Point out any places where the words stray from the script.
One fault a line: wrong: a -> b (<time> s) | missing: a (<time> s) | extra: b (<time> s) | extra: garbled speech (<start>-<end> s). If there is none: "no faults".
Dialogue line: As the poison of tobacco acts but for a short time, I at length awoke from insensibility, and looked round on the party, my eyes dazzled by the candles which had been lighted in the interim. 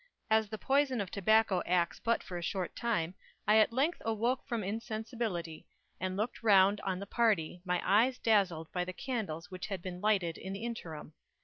no faults